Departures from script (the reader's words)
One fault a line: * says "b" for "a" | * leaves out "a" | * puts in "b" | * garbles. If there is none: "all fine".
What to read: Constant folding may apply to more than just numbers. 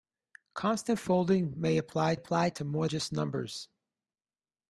* puts in "apply"
* leaves out "than"